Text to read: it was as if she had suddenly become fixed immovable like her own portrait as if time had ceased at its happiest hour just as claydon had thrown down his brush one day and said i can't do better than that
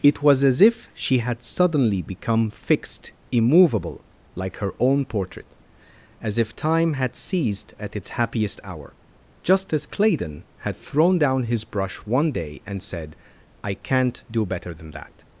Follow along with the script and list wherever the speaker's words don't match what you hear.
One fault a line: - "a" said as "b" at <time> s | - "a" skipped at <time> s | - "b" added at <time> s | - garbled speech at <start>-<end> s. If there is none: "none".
none